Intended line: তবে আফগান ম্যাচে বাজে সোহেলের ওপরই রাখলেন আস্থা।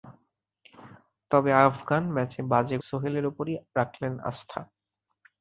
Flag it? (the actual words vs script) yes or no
no